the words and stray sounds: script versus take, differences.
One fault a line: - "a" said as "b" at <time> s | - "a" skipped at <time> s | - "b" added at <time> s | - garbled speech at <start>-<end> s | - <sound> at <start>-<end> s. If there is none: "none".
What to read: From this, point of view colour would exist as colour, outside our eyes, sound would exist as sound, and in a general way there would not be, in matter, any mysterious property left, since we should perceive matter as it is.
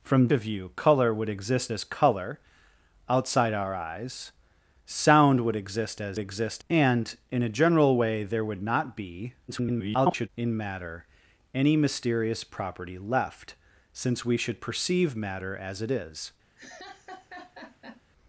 - "this point" skipped at 0.3 s
- "sound" said as "exist" at 6.2 s
- garbled speech at 9.5-10.3 s
- laugh at 16.6-18.0 s